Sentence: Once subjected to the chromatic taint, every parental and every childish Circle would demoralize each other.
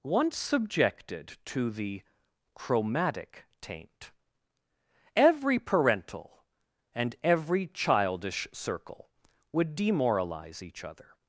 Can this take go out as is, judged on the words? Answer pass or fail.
pass